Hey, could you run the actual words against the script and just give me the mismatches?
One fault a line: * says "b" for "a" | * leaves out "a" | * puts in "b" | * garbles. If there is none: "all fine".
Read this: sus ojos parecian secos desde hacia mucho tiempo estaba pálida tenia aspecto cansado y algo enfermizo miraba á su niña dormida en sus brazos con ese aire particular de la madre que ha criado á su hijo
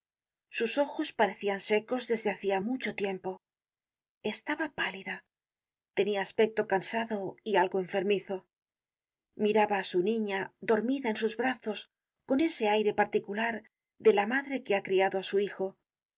all fine